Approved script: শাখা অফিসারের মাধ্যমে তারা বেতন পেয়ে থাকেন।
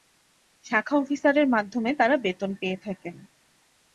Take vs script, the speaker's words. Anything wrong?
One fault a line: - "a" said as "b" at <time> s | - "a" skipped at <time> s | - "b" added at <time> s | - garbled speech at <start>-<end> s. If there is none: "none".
none